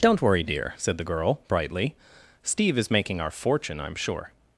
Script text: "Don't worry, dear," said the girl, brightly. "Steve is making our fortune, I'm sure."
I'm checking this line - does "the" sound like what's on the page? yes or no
yes